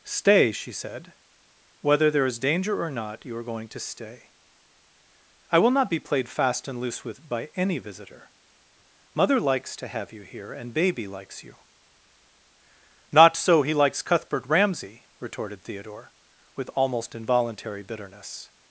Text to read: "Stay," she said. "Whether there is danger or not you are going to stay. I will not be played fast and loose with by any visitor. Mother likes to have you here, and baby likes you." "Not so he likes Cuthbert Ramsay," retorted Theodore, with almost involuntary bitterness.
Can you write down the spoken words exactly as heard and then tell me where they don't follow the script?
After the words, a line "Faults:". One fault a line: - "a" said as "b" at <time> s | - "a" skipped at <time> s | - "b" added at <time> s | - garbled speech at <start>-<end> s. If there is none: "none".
"Stay," she said. "Whether there is danger or not you are going to stay. I will not be played fast and loose with by any visitor. Mother likes to have you here, and baby likes you." "Not so he likes Cuthbert Ramsay," retorted Theodore, with almost involuntary bitterness.
Faults:
none